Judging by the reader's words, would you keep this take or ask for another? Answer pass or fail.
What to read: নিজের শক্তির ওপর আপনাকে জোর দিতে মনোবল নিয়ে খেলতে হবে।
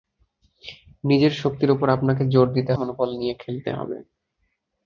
pass